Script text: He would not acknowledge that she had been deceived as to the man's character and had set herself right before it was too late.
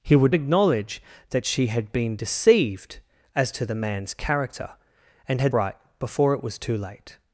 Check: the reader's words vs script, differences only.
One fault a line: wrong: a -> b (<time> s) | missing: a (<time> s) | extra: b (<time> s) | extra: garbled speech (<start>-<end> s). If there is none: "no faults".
missing: not (0.3 s)
missing: set herself (5.5 s)